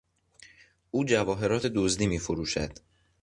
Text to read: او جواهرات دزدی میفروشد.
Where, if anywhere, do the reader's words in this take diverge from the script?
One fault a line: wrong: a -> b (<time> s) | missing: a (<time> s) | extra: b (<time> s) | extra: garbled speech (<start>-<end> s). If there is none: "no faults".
no faults